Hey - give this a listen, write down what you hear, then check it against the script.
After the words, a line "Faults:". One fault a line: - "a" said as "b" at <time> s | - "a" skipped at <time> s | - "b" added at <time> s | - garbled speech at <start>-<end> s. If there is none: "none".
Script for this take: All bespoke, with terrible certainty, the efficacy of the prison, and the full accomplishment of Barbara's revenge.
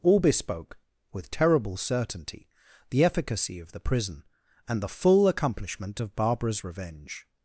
All bespoke, with terrible certainty, the efficacy of the prison, and the full accomplishment of Barbara's revenge.
Faults:
none